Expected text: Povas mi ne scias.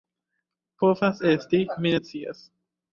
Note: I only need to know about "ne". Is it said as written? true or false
true